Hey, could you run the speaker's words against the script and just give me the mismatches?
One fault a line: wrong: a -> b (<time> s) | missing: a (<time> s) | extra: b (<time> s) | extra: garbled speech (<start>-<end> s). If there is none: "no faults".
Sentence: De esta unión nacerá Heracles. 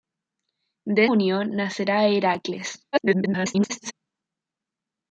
missing: esta (1.1 s)
extra: garbled speech (2.9-3.9 s)